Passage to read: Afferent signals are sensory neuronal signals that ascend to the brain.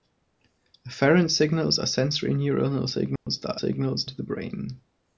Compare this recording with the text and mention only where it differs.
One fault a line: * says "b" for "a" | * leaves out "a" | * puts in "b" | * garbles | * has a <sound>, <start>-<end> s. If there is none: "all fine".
* has a dropout, 3.2-3.3 s
* says "signals" for "ascend"